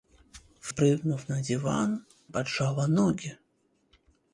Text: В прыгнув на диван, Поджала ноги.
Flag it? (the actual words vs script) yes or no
no